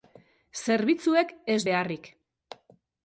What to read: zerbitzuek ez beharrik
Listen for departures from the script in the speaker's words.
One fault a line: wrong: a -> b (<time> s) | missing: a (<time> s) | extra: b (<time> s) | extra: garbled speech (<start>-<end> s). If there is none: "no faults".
no faults